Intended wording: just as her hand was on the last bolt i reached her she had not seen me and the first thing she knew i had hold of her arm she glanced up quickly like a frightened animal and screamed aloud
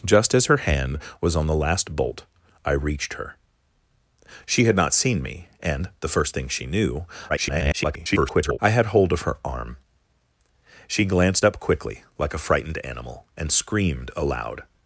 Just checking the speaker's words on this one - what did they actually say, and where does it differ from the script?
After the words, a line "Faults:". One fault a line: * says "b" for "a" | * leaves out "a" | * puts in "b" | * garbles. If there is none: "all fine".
just as her hand was on the last bolt i reached her she had not seen me and the first thing she knew [garbled] i had hold of her arm she glanced up quickly like a frightened animal and screamed aloud
Faults:
* garbles